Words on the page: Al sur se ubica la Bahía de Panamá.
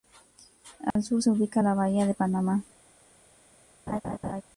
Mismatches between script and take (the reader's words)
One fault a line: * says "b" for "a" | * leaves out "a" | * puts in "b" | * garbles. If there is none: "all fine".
all fine